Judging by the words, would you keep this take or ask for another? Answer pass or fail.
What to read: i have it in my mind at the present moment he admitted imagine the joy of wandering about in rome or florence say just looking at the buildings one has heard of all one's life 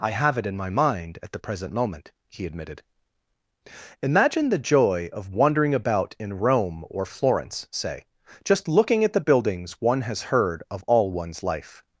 pass